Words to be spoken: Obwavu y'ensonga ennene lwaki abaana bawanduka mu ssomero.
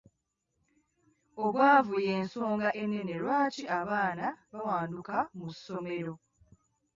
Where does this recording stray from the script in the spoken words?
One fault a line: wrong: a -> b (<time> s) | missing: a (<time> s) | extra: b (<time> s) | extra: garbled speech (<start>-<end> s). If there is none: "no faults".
no faults